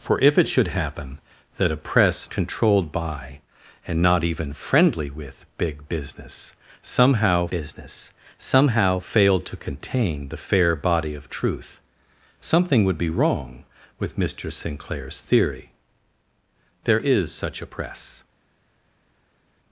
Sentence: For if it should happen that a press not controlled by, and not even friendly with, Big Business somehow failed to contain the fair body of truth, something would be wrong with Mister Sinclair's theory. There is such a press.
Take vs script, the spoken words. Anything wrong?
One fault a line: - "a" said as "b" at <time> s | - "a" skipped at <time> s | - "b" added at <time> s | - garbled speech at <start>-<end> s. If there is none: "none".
- "not" skipped at 2.3 s
- "Business somehow" added at 7.5 s